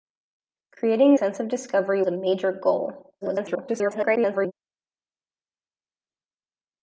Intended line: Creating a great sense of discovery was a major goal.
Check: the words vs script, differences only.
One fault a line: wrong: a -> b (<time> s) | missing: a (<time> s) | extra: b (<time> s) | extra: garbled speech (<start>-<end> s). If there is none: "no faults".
missing: a great (1.1 s)
missing: was (2.0 s)
extra: garbled speech (3.2-4.5 s)